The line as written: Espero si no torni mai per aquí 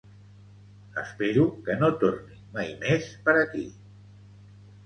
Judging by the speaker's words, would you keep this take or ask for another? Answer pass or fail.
fail